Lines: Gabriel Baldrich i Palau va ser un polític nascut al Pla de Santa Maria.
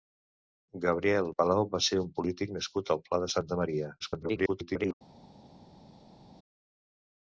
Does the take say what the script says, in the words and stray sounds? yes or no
no